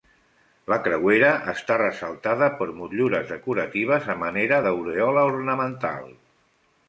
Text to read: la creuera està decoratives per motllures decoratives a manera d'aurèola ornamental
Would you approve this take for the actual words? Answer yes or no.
no